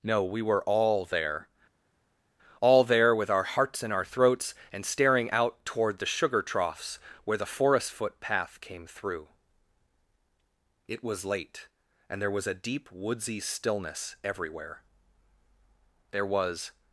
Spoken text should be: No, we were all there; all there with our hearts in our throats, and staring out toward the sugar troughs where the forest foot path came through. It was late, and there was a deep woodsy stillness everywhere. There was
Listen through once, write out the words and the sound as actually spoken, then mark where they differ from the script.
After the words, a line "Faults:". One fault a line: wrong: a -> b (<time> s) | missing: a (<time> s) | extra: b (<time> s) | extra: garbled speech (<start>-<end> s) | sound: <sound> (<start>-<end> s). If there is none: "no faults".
No, we were all there; all there with our hearts in our throats, and staring out toward the sugar troughs where the forest foot path came through. It was late, and there was a deep woodsy stillness everywhere. There was
Faults:
no faults